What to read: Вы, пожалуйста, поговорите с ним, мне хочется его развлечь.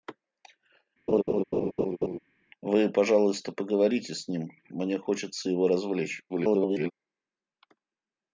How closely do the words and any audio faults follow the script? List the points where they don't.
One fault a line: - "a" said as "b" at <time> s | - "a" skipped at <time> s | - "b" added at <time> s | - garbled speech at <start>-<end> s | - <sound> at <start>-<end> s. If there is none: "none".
- laugh at 1.1-2.2 s
- garbled speech at 6.3-6.9 s